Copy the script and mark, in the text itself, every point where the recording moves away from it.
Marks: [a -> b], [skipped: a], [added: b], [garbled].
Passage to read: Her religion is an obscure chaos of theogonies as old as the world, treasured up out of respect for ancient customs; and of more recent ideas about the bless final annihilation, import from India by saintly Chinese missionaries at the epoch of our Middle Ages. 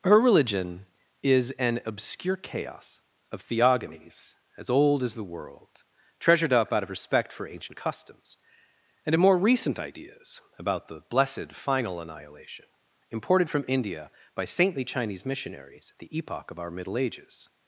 Her religion is an obscure chaos of theogonies as old as the world, treasured up out of respect for ancient customs; and of more recent ideas about the [bless -> blessed] final annihilation, [import -> imported] from India by saintly Chinese missionaries at the epoch of our Middle Ages.